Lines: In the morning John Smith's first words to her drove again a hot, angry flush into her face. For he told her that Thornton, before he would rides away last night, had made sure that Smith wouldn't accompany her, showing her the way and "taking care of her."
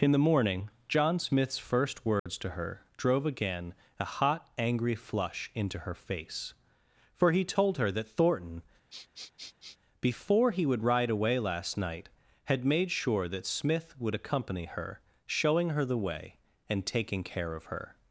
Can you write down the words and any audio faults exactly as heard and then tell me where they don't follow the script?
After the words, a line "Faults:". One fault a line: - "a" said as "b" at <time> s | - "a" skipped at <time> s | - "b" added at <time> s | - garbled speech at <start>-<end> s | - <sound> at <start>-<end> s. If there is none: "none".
In the morning John Smith's first words to her drove again a hot, angry flush into her face. For he told her that Thornton, before he would ride away last night, had made sure that Smith would accompany her, showing her the way and "taking care of her."
Faults:
- dropout at 2.2-2.3 s
- sniff at 8.9-9.8 s
- "rides" said as "ride" at 10.8 s
- "wouldn't" said as "would" at 14.0 s